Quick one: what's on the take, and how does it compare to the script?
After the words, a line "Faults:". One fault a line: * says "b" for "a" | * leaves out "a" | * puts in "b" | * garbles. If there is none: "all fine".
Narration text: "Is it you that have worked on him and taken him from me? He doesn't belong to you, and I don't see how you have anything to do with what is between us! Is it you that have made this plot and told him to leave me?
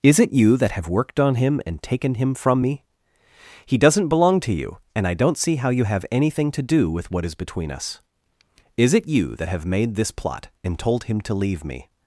"Is it you that have worked on him and taken him from me? He doesn't belong to you, and I don't see how you have anything to do with what is between us! Is it you that have made this plot and told him to leave me?
Faults:
all fine